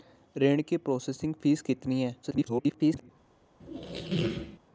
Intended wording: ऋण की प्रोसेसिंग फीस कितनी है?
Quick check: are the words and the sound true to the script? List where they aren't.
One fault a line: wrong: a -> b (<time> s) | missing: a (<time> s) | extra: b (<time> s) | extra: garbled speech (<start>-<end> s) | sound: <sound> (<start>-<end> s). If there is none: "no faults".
extra: garbled speech (2.2-3.1 s)
sound: squeak (3.6-4.6 s)